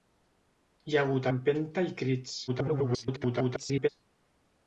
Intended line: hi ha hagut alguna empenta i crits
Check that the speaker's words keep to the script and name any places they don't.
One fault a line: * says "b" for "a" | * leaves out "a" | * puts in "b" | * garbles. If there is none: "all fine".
* leaves out "alguna"
* garbles